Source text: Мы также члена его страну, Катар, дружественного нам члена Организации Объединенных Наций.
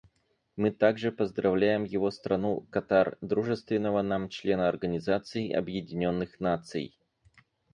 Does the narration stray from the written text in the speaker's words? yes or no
yes